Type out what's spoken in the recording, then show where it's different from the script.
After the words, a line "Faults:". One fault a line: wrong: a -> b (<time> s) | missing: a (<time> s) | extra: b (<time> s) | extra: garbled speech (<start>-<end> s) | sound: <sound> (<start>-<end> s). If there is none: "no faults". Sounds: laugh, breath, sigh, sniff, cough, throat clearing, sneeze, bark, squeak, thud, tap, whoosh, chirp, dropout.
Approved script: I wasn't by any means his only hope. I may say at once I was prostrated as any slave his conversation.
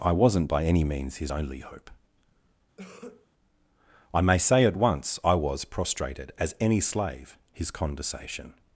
I wasn't by any means his only hope. I may say at once I was prostrated as any slave his conversation.
Faults:
sound: cough (2.8-3.3 s)